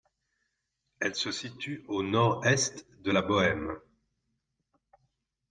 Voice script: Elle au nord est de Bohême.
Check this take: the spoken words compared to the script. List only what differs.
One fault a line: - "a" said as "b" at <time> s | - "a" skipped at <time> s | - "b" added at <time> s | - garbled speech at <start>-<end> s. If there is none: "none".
- "se situe" added at 1.1 s
- "la" added at 3.1 s